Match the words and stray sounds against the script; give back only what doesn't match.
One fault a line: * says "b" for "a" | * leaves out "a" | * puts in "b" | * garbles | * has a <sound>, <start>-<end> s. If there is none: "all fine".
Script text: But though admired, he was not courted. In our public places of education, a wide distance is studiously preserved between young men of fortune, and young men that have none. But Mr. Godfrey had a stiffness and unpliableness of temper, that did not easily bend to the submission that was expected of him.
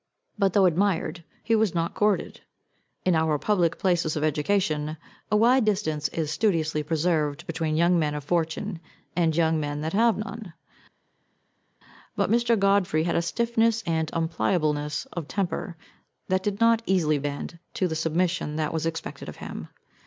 all fine